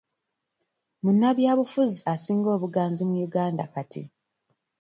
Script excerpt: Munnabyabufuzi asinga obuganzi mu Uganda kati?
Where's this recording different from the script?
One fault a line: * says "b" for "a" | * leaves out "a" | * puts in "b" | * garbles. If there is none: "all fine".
all fine